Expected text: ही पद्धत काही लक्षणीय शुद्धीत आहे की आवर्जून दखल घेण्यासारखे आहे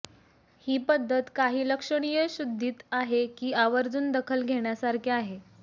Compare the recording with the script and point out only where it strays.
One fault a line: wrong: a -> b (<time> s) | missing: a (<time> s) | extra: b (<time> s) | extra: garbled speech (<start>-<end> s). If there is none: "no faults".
no faults